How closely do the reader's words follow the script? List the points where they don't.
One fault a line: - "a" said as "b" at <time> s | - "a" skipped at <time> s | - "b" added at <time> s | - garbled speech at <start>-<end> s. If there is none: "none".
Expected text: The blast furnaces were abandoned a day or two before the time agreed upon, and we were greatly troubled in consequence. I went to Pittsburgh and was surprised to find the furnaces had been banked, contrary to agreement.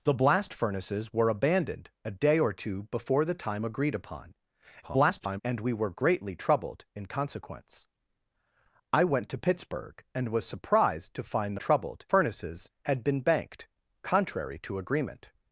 - garbled speech at 4.8-5.4 s
- "the" said as "troubled" at 11.5 s